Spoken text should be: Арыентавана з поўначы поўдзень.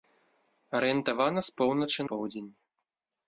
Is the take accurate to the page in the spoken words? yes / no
yes